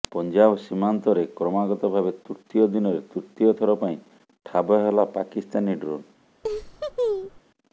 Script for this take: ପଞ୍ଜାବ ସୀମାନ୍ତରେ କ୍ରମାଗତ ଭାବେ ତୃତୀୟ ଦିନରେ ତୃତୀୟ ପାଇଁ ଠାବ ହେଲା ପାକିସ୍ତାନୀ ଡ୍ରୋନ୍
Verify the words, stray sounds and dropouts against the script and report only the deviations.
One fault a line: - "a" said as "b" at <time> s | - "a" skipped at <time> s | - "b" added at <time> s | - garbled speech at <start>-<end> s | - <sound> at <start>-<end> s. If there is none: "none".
- "ଥର" added at 3.6 s
- laugh at 6.4-7.4 s